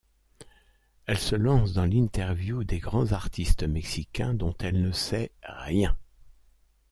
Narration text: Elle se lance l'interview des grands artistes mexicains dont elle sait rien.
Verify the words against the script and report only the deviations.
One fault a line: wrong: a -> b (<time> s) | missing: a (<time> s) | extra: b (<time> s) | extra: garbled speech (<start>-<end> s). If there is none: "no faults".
extra: dans (1.7 s)
extra: ne (4.8 s)